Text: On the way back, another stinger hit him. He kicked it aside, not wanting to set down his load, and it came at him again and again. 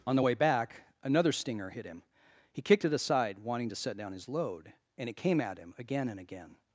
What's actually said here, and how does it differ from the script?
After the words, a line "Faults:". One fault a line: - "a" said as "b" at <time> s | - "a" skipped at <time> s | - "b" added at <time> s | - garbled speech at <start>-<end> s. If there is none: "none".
On the way back, another stinger hit him. He kicked it aside, wanting to set down his load, and it came at him again and again.
Faults:
- "not" skipped at 3.4 s